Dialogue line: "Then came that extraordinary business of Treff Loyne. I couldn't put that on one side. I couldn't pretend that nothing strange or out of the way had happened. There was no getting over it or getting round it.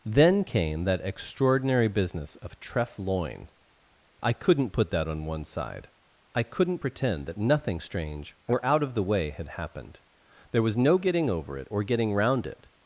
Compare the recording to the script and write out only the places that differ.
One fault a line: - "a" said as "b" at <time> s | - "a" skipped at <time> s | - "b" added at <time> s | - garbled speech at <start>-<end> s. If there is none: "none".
none